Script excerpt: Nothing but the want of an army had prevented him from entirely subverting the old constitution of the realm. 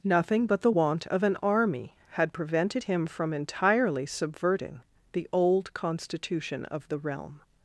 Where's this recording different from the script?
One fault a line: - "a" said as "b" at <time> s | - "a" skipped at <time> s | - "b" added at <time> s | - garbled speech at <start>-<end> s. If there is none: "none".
none